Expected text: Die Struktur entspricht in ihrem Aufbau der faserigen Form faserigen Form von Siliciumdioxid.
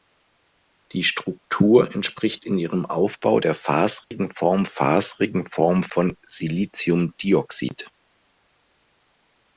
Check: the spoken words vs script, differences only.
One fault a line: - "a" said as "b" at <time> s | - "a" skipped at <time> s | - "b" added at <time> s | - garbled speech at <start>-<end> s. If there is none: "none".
none